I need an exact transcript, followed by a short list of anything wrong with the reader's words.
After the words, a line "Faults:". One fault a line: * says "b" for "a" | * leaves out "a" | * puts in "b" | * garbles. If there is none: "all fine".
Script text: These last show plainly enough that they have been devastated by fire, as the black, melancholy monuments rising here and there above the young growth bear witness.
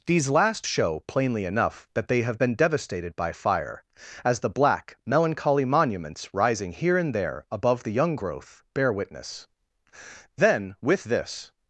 These last show plainly enough that they have been devastated by fire, as the black, melancholy monuments rising here and there above the young growth bear witness. Then, with this
Faults:
* puts in "Then with this"